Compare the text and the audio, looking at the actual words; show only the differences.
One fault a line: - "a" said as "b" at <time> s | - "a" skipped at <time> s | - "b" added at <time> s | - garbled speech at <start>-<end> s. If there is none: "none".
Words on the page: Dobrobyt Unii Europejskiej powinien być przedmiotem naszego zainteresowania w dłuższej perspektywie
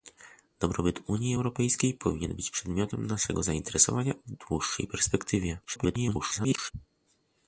- garbled speech at 5.6-6.7 s